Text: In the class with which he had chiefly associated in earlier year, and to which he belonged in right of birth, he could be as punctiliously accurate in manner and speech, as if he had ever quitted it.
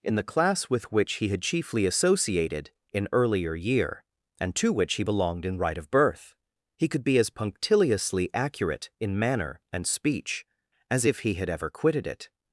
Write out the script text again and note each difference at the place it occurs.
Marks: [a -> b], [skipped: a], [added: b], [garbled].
In the class with which he had chiefly associated in earlier year, and to which he belonged in right of birth, he could be as punctiliously accurate in manner and speech, as if he had ever quitted it.